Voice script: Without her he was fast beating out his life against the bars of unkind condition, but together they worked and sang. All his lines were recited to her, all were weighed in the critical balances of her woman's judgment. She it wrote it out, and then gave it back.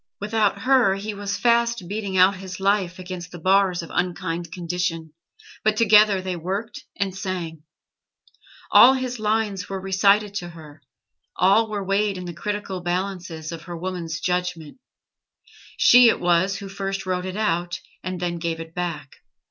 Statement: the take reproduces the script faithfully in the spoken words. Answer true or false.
false